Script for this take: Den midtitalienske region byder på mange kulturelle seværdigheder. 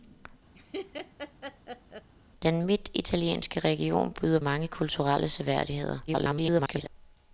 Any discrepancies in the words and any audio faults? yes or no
yes